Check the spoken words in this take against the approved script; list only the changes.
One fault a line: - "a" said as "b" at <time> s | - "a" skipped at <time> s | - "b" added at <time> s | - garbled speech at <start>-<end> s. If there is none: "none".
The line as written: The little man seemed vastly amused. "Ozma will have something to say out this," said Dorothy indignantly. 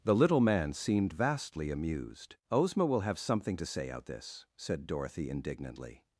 none